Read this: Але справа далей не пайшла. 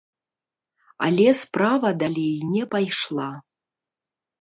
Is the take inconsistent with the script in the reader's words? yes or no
no